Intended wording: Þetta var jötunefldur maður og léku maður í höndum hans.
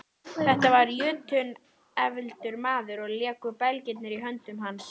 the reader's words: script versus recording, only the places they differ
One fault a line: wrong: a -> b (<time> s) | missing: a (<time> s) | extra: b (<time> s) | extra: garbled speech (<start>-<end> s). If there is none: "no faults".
wrong: maður -> belgirnir (3.6 s)